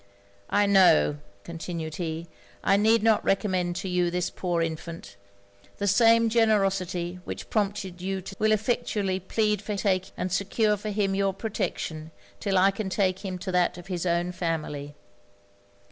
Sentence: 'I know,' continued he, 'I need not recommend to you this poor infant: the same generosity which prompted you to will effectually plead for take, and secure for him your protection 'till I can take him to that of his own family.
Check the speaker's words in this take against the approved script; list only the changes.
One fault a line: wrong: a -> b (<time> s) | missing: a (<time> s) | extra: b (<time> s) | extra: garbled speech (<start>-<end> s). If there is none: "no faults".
no faults